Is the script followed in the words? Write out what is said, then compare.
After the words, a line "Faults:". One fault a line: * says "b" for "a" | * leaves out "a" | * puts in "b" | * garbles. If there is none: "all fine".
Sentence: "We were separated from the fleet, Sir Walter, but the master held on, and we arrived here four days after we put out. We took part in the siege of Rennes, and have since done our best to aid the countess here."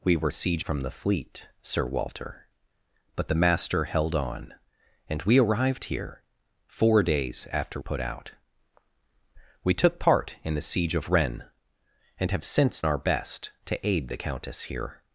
"We were siege from the fleet, Sir Walter, but the master held on, and we arrived here four days after put out. We took part in the siege of Rennes, and have since our best to aid the countess here."
Faults:
* says "siege" for "separated"
* leaves out "we"
* leaves out "done"